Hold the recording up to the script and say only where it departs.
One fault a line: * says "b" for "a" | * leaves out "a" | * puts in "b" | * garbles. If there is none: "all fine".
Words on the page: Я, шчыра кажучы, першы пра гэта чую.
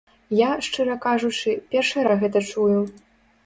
all fine